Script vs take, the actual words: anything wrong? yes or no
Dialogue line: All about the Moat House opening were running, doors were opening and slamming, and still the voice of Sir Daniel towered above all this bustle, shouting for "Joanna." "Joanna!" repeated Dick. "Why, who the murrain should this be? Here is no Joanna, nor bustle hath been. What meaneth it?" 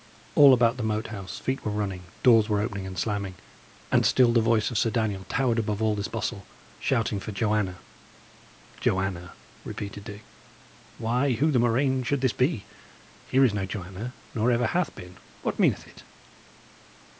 yes